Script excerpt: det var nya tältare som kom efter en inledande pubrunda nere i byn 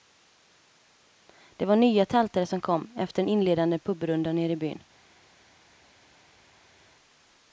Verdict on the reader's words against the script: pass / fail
pass